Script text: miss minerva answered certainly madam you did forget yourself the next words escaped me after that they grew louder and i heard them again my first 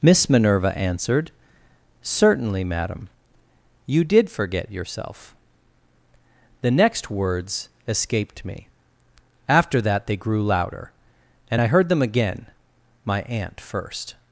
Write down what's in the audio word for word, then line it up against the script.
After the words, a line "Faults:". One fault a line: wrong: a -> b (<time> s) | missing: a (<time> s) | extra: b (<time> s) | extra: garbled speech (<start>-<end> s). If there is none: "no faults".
miss minerva answered certainly madam you did forget yourself the next words escaped me after that they grew louder and i heard them again my aunt first
Faults:
extra: aunt (13.2 s)